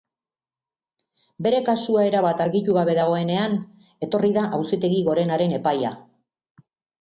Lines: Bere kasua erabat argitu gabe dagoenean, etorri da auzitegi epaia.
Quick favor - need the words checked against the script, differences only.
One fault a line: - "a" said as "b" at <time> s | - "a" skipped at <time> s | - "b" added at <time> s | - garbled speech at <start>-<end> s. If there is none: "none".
- "gorenaren" added at 5.1 s